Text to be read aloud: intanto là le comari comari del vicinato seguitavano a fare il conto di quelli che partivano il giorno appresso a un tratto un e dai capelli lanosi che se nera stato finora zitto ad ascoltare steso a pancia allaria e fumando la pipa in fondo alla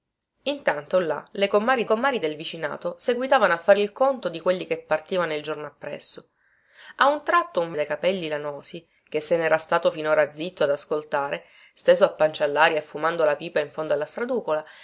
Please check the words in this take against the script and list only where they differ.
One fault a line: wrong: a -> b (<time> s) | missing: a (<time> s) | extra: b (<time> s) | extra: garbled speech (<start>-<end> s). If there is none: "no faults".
no faults